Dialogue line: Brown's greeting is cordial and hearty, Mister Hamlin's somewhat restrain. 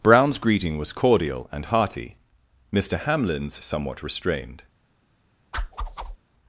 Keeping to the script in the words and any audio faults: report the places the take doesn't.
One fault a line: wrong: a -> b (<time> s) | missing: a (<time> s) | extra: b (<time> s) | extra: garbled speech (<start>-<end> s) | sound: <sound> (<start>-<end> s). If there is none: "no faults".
wrong: is -> was (0.8 s)
wrong: restrain -> restrained (4.0 s)
sound: whoosh (5.5-6.2 s)